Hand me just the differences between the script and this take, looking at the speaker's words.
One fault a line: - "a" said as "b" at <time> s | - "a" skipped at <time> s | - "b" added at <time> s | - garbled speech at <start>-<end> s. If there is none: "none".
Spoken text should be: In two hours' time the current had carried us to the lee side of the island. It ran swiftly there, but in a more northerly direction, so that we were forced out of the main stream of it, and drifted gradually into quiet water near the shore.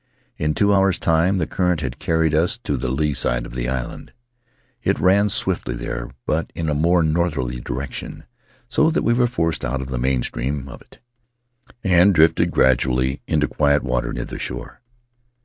none